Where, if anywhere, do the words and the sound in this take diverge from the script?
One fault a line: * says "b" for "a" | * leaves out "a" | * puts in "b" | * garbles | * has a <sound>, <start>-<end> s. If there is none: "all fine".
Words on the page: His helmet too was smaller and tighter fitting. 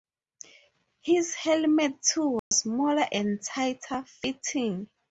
* has a dropout, 2.4-2.5 s